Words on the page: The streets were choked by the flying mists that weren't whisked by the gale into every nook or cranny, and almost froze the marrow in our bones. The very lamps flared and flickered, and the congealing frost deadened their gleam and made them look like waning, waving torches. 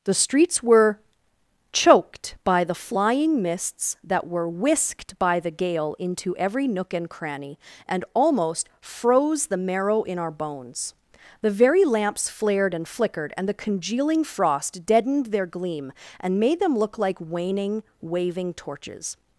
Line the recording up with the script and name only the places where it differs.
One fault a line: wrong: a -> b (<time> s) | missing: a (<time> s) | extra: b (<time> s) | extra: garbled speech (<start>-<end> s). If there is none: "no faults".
wrong: weren't -> were (4.2 s)
wrong: or -> and (6.9 s)